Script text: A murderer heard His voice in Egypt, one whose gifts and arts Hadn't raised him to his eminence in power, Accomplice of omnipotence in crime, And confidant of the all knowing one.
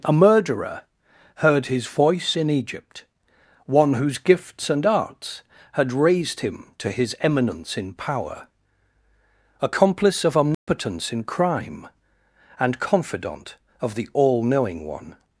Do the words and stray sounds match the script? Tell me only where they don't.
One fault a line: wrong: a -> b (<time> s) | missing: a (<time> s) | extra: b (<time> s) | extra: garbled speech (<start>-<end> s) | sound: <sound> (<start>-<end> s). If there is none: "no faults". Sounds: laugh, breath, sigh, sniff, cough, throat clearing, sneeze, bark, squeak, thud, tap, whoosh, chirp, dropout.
wrong: Hadn't -> Had (5.7 s)
sound: dropout (10.5-10.7 s)